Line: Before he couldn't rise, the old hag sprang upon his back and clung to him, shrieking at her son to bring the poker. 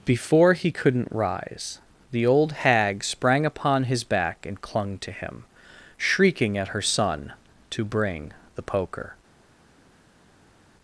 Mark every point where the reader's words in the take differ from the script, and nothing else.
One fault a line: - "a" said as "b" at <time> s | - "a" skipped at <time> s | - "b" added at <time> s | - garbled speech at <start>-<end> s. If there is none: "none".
none